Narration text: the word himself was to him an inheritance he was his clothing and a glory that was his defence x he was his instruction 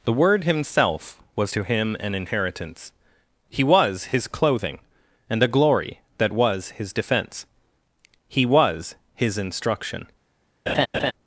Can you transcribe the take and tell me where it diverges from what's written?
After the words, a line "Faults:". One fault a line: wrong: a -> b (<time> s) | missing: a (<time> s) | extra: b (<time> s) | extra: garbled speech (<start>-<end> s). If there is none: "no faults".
the word himself was to him an inheritance he was his clothing and a glory that was his defense he was his instruction
Faults:
wrong: defence x -> defense (6.9 s)